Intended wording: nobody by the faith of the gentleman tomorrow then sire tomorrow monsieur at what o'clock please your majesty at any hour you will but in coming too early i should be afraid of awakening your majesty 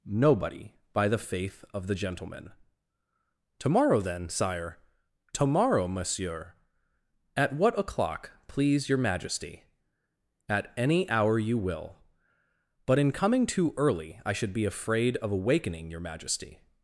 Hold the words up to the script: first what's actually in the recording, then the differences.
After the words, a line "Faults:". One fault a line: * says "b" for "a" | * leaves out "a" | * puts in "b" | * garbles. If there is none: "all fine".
nobody by the faith of the gentleman tomorrow then sire tomorrow monsieur at what o'clock please your majesty at any hour you will but in coming too early i should be afraid of awakening your majesty
Faults:
all fine